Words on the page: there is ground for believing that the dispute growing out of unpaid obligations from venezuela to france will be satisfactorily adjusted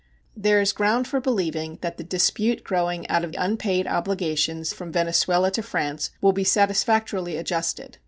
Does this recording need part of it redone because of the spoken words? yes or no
no